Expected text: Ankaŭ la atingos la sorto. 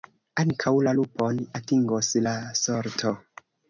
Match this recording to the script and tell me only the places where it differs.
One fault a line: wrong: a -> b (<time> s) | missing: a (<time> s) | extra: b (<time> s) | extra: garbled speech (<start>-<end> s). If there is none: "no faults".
extra: lupon (1.0 s)